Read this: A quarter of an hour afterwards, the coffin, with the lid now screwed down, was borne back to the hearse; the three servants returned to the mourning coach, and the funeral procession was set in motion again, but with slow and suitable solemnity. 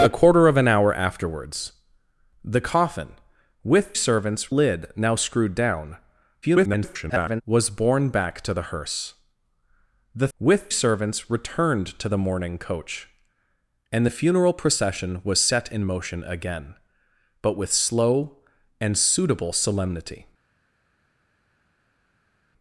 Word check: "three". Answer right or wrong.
wrong